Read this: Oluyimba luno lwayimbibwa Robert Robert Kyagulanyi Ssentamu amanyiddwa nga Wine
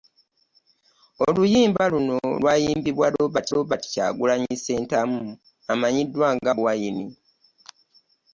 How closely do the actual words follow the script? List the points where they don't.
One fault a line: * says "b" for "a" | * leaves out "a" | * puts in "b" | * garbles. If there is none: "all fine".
all fine